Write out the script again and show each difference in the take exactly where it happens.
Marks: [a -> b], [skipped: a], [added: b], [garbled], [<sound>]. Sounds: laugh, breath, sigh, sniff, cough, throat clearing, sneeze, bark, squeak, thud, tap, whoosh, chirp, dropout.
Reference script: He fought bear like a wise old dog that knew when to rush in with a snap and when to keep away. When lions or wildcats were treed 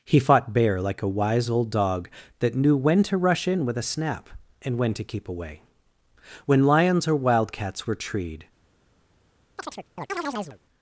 He fought bear like a wise old dog that knew when to rush in with a snap and when to keep away. When lions or wildcats were treed [chirp]